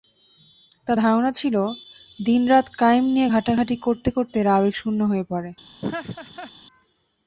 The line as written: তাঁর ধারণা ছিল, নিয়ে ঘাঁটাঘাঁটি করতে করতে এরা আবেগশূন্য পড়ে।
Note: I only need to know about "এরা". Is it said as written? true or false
true